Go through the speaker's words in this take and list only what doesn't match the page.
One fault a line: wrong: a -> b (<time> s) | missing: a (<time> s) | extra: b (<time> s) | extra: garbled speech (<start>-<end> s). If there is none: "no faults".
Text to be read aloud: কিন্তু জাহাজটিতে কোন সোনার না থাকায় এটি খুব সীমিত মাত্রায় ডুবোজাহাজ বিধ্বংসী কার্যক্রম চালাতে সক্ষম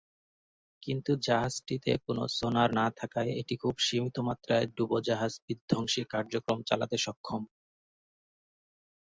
no faults